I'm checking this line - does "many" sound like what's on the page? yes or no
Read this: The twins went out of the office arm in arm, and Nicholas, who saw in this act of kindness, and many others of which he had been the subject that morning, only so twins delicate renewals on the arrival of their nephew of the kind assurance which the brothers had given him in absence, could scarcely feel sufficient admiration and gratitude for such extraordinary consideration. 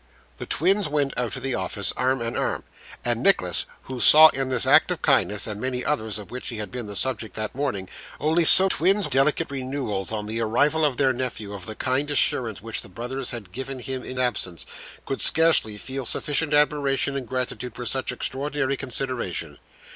yes